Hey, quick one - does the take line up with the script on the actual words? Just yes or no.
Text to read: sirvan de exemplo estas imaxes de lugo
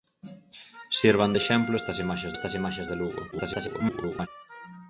no